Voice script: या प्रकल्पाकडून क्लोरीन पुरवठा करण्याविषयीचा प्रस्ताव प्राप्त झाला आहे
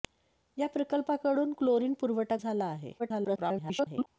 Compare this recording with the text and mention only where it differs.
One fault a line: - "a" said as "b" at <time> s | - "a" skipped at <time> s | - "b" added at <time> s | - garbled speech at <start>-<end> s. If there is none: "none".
- "करण्याविषयीचा प्रस्ताव प्राप्त" skipped at 2.4 s
- garbled speech at 3.0-4.1 s